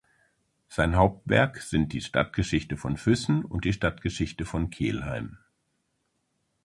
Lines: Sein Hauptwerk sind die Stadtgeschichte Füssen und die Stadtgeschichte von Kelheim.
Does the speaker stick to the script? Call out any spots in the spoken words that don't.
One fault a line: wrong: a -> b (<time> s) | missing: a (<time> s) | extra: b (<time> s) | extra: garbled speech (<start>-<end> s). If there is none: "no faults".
extra: von (2.8 s)